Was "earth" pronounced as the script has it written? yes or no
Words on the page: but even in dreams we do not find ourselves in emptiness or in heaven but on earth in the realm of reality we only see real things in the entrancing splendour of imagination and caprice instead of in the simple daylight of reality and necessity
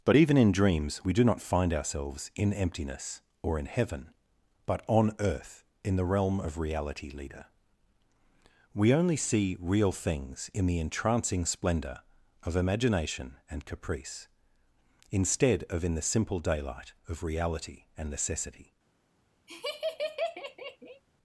yes